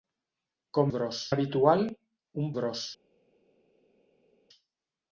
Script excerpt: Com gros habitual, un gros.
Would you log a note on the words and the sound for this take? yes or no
no